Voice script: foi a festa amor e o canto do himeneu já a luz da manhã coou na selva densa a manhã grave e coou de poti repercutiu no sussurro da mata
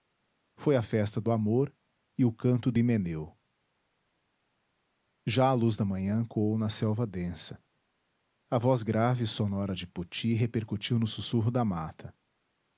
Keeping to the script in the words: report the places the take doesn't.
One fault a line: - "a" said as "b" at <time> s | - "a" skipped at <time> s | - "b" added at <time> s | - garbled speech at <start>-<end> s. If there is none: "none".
- "do" added at 1.2 s
- "manhã" said as "voz" at 8.6 s
- "coou" said as "sonora" at 9.3 s